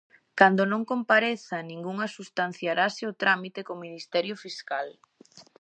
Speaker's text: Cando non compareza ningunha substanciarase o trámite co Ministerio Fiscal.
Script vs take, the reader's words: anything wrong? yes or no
no